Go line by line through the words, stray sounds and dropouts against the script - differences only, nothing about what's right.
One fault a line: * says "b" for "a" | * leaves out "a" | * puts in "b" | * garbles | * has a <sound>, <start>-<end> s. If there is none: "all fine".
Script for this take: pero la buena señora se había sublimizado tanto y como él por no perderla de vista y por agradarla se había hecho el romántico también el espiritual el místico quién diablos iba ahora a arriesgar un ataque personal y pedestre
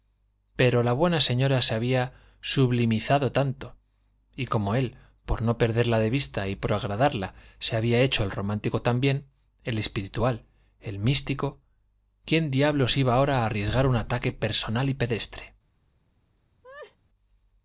* has a laugh, 16.6-17.0 s